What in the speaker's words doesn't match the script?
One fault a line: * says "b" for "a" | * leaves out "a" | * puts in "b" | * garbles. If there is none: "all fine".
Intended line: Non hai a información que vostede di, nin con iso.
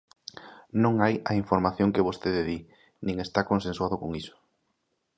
* puts in "está consensuado"